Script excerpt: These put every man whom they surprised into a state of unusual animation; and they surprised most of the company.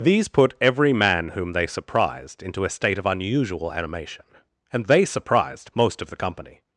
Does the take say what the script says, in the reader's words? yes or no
yes